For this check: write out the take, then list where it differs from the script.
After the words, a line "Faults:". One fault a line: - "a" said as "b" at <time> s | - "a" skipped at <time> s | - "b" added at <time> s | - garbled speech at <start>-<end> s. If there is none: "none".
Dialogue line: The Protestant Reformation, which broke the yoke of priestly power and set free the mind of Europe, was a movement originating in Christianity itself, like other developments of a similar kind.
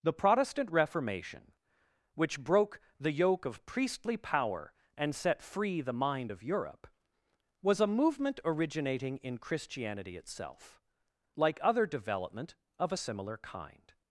The Protestant Reformation, which broke the yoke of priestly power and set free the mind of Europe, was a movement originating in Christianity itself, like other development of a similar kind.
Faults:
- "developments" said as "development" at 11.8 s